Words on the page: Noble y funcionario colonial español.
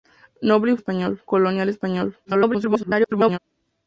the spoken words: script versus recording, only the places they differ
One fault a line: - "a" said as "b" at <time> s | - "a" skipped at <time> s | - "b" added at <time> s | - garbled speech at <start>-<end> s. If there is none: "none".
- "funcionario" said as "español" at 0.7 s
- garbled speech at 2.2-3.4 s